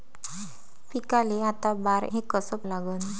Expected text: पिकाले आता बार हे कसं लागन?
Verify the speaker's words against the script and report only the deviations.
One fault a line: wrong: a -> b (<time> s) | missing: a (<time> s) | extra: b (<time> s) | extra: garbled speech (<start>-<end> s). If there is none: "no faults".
no faults